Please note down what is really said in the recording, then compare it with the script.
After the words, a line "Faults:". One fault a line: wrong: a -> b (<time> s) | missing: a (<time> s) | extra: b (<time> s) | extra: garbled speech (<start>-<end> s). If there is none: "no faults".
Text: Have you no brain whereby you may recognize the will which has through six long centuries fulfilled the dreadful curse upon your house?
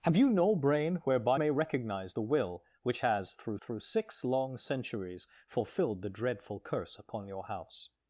Have you no brain whereby may recognize the will which has through through six long centuries fulfilled the dreadful curse upon your house?
Faults:
missing: you (1.4 s)
extra: through (3.6 s)